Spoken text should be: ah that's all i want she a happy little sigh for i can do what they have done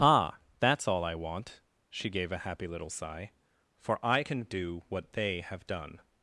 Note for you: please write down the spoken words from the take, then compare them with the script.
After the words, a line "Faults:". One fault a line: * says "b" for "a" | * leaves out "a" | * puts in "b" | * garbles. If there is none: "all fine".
ah that's all i want she gave a happy little sigh for i can do what they have done
Faults:
* puts in "gave"